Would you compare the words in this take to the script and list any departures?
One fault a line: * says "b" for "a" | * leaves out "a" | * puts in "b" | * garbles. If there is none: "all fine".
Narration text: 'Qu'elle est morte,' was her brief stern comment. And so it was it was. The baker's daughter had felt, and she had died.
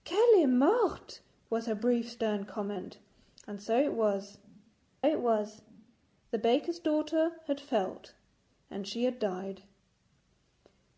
all fine